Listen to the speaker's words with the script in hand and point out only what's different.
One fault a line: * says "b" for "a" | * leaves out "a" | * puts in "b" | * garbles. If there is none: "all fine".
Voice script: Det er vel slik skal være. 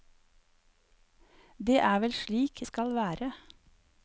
all fine